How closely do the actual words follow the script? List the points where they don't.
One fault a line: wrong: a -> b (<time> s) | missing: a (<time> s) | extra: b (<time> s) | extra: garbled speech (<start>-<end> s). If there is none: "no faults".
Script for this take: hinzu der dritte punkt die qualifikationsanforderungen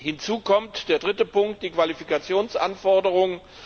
extra: kommt (0.4 s)